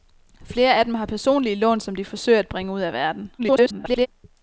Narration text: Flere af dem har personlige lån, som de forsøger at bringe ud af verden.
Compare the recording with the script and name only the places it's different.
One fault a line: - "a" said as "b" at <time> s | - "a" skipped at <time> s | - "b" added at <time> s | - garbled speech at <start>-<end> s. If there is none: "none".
- garbled speech at 3.4-4.1 s